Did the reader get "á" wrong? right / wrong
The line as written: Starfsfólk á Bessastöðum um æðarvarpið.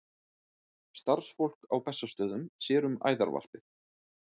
right